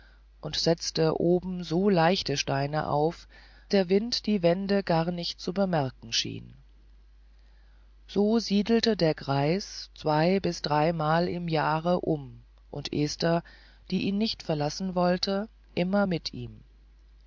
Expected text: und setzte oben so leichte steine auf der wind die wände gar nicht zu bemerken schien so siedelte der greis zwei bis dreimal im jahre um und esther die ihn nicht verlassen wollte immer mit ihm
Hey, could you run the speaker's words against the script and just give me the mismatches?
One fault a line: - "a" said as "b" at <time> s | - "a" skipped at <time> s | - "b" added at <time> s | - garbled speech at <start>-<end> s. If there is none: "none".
none